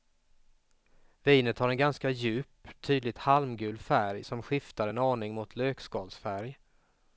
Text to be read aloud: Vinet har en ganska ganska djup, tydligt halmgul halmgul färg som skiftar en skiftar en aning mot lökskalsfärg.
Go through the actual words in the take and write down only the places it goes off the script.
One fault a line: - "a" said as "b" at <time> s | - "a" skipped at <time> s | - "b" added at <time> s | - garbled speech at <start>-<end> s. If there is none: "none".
- "ganska" skipped at 2.1 s
- "halmgul" skipped at 3.8 s
- "skiftar en" skipped at 5.0 s